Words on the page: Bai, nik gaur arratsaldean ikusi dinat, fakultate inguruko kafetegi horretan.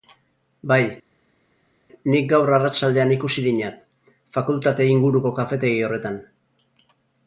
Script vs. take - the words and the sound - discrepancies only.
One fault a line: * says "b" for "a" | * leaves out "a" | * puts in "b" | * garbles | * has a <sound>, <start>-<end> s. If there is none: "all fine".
all fine